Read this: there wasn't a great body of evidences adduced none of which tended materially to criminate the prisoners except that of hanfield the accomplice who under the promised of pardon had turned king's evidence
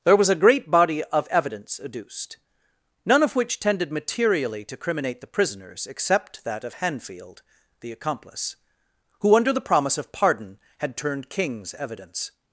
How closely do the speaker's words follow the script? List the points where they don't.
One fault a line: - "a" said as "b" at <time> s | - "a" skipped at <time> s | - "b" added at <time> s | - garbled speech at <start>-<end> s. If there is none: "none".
- "wasn't" said as "was" at 0.1 s
- "evidences" said as "evidence" at 1.3 s
- "promised" said as "promise" at 9.6 s